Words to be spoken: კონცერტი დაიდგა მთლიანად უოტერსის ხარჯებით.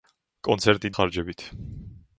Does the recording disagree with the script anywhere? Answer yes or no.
yes